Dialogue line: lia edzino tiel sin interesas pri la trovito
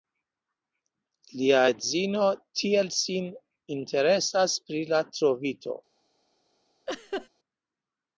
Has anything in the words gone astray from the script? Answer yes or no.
no